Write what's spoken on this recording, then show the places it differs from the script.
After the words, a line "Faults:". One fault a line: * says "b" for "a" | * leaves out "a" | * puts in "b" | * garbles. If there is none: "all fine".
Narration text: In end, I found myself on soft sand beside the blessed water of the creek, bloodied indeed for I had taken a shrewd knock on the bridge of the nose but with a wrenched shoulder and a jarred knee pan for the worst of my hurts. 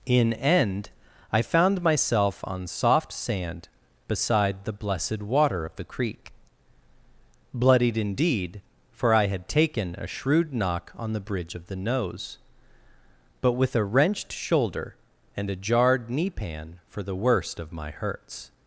In end, I found myself on soft sand beside the blessed water of the creek, bloodied indeed for I had taken a shrewd knock on the bridge of the nose but with a wrenched shoulder and a jarred knee pan for the worst of my hurts.
Faults:
all fine